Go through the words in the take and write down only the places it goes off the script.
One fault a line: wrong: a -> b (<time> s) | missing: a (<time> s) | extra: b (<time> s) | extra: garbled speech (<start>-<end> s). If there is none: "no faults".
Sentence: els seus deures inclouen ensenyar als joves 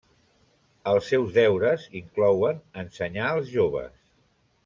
no faults